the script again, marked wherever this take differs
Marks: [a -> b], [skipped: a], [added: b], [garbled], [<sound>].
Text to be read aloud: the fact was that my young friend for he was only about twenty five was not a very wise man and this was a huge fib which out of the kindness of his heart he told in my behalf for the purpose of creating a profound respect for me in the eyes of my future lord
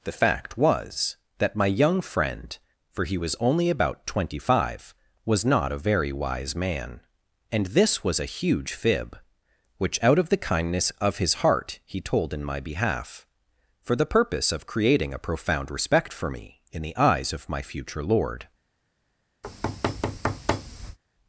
the fact was that my young friend for he was only about twenty five was not a very wise man and this was a huge fib which out of the kindness of his heart he told in my behalf for the purpose of creating a profound respect for me in the eyes of my future lord [thud]